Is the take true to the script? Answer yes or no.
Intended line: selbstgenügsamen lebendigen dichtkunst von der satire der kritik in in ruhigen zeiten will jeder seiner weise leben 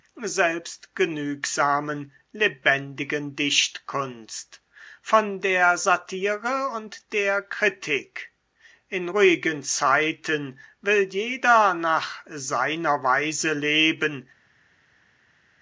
no